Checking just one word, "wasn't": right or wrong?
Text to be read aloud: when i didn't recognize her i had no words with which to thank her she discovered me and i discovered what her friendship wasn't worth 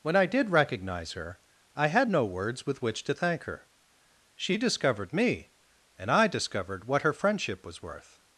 wrong